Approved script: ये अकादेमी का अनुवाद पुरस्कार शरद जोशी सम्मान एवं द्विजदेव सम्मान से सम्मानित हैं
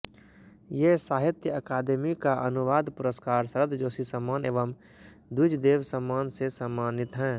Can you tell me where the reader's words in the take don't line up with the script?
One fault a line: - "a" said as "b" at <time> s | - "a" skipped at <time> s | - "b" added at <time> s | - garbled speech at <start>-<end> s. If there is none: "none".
- "साहित्य" added at 1.0 s